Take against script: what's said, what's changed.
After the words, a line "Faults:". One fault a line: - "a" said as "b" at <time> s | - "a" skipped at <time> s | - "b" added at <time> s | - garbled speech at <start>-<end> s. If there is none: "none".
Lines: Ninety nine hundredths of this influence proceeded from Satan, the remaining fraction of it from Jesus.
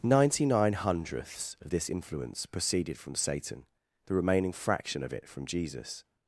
Ninety nine hundredths of this influence proceeded from Satan, the remaining fraction of it from Jesus.
Faults:
none